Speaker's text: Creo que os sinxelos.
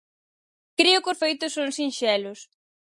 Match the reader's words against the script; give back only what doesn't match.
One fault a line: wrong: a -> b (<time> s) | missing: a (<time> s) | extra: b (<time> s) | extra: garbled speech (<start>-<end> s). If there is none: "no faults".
extra: feitos son (1.2 s)